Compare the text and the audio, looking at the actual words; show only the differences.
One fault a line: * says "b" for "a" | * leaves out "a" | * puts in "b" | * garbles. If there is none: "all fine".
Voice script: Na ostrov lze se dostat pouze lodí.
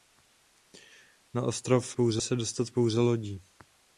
* says "pouze" for "lze"